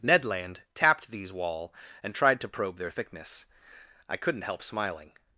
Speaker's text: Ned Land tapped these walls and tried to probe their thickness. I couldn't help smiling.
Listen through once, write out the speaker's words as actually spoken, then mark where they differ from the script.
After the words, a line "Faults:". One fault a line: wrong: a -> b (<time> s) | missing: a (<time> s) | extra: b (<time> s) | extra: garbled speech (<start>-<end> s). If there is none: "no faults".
Ned Land tapped these wall and tried to probe their thickness. I couldn't help smiling.
Faults:
wrong: walls -> wall (1.3 s)